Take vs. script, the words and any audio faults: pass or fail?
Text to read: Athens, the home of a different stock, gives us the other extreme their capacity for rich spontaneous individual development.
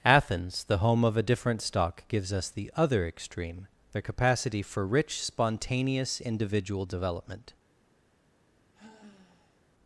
fail